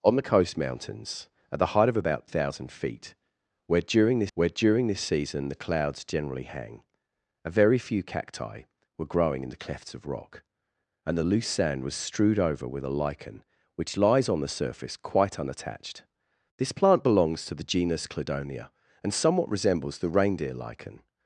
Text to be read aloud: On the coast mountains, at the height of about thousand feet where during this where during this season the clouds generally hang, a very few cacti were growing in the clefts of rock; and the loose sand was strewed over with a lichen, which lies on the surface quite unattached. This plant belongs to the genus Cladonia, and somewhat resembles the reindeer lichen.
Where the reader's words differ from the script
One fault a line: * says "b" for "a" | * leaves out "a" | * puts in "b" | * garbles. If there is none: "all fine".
all fine